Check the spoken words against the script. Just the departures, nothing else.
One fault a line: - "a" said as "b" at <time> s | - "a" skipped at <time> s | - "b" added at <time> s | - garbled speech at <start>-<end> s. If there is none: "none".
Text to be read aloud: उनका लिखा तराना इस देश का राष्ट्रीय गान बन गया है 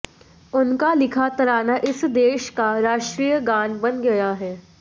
none